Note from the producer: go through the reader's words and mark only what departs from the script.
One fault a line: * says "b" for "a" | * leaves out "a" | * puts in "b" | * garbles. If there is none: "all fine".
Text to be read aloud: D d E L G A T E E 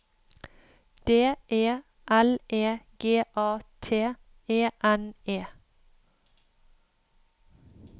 * leaves out "d"
* puts in "E"
* puts in "N"